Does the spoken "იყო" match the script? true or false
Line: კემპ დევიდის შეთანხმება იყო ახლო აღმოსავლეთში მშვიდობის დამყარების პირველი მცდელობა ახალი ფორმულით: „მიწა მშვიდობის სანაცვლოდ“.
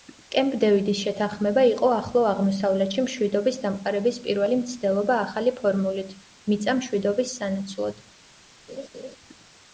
true